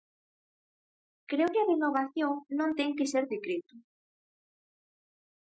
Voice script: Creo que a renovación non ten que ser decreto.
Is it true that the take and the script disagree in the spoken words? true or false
false